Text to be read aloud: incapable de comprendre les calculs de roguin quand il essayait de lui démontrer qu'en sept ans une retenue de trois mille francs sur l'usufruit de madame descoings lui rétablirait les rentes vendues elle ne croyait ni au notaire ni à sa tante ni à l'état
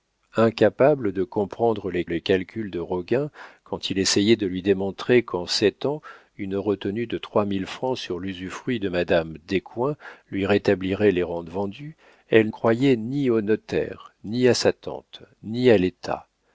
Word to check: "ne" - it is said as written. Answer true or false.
false